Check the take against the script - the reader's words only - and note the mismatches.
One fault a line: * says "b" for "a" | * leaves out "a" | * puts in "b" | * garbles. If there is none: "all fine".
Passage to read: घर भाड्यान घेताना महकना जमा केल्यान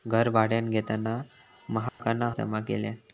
all fine